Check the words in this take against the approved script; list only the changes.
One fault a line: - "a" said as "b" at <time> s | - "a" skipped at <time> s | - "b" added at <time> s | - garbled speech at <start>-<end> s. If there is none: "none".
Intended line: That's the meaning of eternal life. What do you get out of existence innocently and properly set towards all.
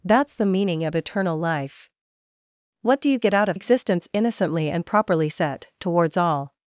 none